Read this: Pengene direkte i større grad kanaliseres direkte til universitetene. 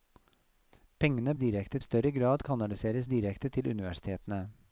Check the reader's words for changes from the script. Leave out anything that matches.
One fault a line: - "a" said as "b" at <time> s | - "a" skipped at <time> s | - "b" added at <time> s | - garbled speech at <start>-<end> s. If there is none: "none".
none